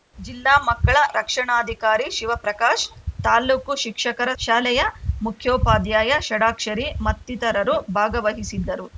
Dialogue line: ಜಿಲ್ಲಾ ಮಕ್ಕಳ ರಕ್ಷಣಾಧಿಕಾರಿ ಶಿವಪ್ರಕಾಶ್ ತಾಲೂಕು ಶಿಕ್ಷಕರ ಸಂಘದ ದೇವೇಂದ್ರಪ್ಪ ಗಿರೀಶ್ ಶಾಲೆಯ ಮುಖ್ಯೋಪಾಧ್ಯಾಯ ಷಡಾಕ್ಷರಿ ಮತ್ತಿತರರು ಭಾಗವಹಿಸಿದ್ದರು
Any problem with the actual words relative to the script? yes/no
yes